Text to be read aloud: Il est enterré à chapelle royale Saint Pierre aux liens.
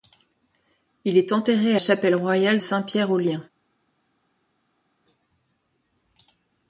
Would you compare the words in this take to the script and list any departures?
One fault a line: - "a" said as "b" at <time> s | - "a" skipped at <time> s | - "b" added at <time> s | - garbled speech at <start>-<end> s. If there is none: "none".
none